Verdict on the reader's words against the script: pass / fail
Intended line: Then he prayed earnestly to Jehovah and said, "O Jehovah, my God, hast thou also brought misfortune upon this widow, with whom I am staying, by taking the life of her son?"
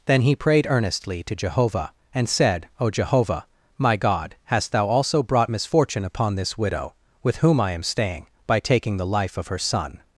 pass